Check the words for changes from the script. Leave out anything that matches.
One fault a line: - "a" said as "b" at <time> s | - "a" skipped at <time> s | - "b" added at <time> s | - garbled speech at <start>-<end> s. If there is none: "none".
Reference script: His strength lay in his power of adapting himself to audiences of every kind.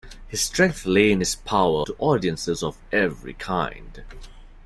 - "of adapting himself" skipped at 1.8 s